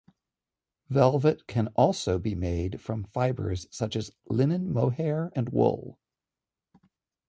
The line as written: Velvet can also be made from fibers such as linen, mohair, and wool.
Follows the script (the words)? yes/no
yes